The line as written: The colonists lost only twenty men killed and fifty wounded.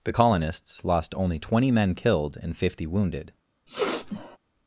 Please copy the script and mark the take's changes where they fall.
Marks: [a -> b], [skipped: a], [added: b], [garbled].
The colonists lost only twenty men killed and fifty wounded.